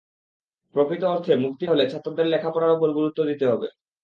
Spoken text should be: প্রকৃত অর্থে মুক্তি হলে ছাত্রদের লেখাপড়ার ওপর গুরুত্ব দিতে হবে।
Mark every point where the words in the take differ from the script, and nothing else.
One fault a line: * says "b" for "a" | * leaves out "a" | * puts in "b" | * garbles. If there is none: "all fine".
all fine